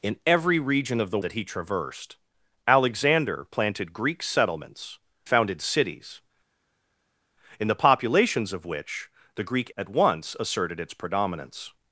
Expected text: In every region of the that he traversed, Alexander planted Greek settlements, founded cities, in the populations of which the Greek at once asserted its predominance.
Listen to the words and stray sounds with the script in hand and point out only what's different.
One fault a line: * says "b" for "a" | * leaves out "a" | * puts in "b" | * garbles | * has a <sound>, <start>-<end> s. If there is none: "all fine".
all fine